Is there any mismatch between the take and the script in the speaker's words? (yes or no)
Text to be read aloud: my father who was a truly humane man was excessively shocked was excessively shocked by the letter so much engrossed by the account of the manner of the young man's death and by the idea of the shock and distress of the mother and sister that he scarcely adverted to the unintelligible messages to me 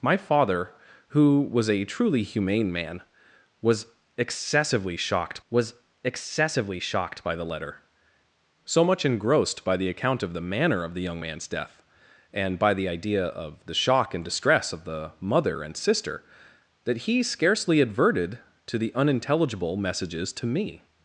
no